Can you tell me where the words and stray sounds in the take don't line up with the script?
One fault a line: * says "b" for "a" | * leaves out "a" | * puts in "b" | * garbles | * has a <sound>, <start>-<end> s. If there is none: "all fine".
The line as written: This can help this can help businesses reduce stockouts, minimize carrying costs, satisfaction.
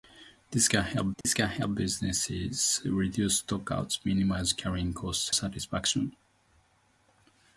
* has a dropout, 1.2-1.2 s